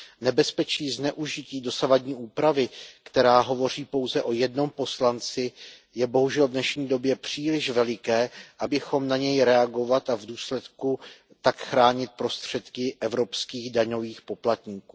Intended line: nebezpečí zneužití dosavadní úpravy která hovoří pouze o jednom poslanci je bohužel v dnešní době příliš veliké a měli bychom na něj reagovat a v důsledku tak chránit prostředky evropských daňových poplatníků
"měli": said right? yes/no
no